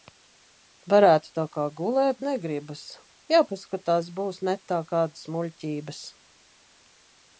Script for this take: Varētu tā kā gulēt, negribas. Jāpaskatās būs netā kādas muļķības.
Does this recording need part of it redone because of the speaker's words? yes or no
no